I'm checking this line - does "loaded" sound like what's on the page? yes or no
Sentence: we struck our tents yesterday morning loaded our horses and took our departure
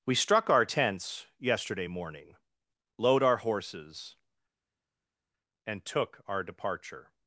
no